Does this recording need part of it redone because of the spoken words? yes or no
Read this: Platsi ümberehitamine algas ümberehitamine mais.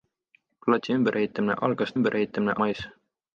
no